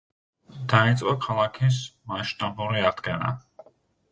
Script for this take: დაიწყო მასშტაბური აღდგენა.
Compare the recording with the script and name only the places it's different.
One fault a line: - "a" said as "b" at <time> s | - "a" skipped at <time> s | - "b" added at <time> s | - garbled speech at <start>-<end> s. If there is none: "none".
- "ქალაქის" added at 1.3 s